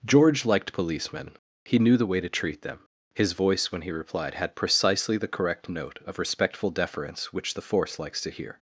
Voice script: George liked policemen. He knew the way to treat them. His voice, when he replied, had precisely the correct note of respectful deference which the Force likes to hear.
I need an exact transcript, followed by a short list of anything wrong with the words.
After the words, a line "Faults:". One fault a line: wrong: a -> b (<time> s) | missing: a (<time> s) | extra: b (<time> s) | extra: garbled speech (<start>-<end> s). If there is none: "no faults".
George liked policemen. He knew the way to treat them. His voice, when he replied, had precisely the correct note of respectful deference which the Force likes to hear.
Faults:
no faults